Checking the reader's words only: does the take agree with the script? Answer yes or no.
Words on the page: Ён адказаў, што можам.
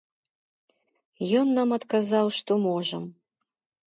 no